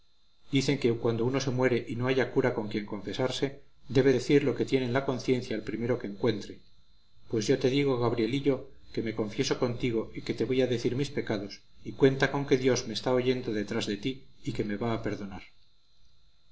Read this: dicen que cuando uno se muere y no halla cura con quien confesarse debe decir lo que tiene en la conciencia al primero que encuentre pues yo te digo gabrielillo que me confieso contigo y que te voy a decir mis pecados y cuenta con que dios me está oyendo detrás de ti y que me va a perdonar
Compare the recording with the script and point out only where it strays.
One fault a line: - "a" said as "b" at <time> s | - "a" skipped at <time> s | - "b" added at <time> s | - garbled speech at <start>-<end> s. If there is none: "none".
none